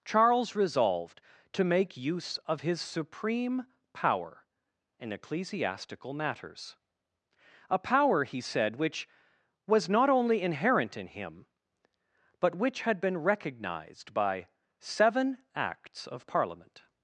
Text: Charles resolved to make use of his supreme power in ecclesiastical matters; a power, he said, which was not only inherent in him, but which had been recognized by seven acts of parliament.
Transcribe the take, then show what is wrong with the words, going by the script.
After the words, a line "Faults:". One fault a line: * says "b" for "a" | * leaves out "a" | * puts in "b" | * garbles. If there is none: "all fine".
Charles resolved to make use of his supreme power in ecclesiastical matters; a power, he said, which was not only inherent in him, but which had been recognized by seven acts of parliament.
Faults:
all fine